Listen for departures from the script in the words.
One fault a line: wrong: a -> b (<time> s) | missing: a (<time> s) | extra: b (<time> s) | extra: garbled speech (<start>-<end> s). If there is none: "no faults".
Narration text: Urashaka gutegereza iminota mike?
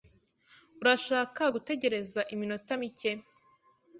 no faults